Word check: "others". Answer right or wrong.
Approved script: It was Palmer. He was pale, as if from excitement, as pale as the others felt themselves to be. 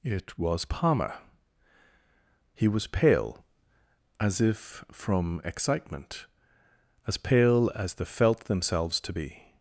wrong